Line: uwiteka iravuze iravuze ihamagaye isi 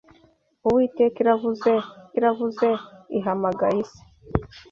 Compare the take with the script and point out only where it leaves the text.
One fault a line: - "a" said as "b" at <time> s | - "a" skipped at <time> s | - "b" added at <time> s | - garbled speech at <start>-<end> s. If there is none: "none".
none